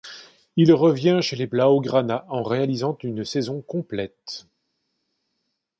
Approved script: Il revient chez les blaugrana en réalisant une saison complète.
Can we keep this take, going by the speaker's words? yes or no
yes